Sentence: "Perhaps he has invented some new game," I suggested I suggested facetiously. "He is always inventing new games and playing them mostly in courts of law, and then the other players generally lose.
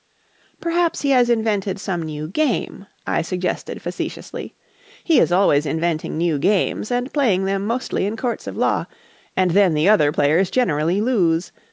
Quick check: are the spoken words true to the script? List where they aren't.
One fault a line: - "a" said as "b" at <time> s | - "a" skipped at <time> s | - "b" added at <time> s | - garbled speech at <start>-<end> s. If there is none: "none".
- "I suggested" skipped at 3.8 s